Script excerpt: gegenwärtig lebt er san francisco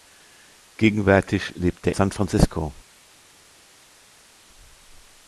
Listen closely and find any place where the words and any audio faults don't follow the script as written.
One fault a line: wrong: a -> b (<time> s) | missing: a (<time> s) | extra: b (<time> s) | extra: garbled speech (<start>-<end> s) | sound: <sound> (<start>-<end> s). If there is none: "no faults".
no faults